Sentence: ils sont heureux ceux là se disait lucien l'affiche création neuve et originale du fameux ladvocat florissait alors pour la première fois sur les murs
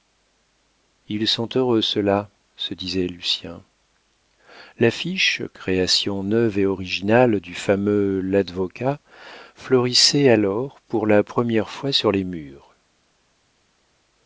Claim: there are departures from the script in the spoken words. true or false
false